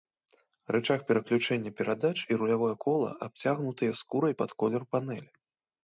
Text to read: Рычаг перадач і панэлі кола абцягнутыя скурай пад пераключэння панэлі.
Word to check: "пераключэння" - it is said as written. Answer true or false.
false